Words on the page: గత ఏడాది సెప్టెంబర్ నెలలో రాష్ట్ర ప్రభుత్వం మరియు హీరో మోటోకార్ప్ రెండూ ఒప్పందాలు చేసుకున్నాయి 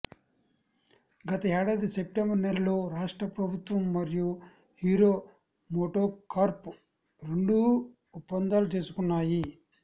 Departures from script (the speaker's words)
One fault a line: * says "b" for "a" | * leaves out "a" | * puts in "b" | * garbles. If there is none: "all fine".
all fine